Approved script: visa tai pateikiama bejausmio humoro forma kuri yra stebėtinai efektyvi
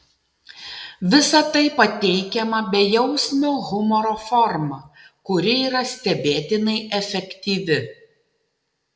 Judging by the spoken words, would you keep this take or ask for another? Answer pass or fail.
pass